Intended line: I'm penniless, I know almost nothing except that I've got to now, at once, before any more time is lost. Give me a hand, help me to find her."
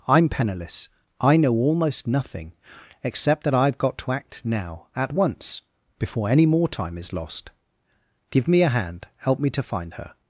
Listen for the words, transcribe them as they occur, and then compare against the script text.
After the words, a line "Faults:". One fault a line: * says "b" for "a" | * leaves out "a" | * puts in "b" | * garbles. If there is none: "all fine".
I'm penniless, I know almost nothing except that I've got to act now, at once, before any more time is lost. Give me a hand, help me to find her."
Faults:
* puts in "act"